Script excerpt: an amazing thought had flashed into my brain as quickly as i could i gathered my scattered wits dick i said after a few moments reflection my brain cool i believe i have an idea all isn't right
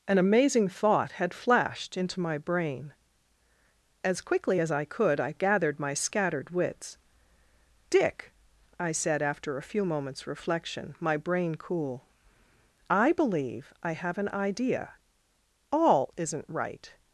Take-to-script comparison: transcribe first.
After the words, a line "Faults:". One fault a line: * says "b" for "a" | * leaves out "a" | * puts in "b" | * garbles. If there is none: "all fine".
an amazing thought had flashed into my brain as quickly as i could i gathered my scattered wits dick i said after a few moments reflection my brain cool i believe i have an idea all isn't right
Faults:
all fine